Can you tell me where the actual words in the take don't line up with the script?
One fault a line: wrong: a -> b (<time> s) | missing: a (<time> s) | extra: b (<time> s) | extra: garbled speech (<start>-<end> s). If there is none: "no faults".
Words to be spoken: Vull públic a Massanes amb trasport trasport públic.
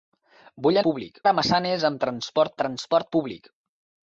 no faults